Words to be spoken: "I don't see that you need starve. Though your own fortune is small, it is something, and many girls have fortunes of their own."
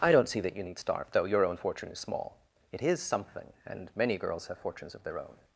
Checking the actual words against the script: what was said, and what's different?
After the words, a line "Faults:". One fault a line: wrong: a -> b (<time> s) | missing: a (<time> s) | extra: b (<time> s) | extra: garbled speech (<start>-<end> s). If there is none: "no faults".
"I don't see that you need starve. Though your own fortune is small, it is something, and many girls have fortunes of their own."
Faults:
no faults